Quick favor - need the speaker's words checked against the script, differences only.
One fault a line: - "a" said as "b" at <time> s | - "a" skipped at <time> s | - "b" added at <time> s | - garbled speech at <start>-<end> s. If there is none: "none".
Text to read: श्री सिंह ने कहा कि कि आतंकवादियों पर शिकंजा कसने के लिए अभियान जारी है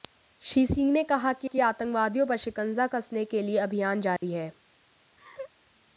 none